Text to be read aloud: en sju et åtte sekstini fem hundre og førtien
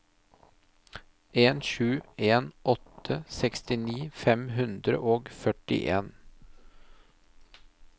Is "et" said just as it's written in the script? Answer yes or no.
no